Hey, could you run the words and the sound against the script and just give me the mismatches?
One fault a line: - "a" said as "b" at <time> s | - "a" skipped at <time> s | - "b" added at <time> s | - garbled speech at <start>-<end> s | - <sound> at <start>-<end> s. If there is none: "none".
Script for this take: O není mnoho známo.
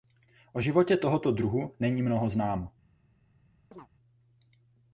- "životě tohoto druhu" added at 0.6 s
- chirp at 3.7-3.9 s